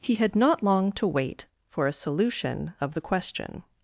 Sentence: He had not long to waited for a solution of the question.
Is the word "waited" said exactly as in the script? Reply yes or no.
no